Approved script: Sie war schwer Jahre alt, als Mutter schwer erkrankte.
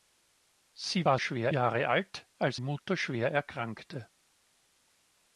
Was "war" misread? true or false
false